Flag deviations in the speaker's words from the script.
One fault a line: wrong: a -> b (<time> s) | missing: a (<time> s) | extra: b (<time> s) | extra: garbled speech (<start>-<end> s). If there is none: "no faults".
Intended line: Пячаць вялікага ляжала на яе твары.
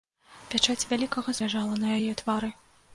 no faults